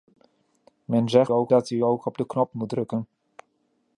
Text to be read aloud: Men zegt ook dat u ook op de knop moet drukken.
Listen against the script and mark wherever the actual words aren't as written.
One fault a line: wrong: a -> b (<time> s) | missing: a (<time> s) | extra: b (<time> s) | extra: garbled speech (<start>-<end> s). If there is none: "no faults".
no faults